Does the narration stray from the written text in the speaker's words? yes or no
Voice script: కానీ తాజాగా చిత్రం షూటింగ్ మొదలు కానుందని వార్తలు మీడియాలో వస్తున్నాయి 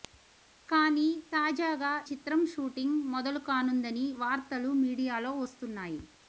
no